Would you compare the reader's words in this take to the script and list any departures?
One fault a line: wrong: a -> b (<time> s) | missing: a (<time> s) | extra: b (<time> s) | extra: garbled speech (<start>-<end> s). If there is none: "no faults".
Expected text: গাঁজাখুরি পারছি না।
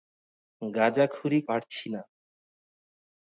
no faults